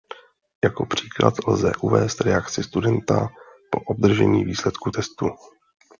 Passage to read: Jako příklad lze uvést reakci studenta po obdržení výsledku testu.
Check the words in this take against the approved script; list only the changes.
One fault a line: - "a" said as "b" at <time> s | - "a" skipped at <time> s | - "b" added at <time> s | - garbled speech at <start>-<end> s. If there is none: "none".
none